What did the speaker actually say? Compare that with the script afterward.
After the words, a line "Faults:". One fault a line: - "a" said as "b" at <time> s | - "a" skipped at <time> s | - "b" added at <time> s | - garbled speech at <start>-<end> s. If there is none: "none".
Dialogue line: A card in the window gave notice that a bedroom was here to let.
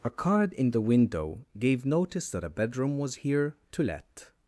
A card in the window gave notice that a bedroom was here to let.
Faults:
none